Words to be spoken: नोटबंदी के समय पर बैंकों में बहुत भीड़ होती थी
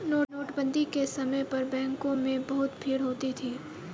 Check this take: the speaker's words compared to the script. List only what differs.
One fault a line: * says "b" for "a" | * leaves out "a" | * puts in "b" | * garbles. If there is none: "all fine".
all fine